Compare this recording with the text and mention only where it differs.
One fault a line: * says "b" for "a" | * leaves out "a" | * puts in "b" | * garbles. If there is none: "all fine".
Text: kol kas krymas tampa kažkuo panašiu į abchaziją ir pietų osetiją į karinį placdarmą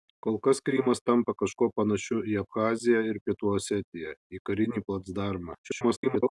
* garbles